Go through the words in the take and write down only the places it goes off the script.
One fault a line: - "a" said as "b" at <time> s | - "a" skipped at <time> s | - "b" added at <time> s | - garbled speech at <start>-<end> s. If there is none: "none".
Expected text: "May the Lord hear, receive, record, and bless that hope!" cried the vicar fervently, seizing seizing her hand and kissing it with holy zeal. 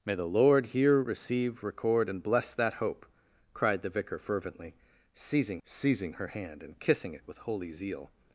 none